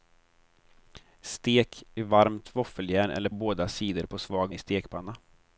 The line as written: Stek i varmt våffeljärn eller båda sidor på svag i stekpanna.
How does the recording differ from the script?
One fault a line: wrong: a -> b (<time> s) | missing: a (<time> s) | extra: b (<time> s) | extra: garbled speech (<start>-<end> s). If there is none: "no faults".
no faults